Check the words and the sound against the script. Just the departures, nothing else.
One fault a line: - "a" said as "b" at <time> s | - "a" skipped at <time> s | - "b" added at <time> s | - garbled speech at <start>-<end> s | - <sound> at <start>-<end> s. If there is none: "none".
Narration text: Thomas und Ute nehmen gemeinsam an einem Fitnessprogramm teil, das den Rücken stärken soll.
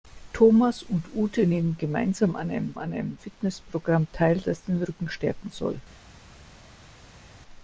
- "an einem" added at 2.8 s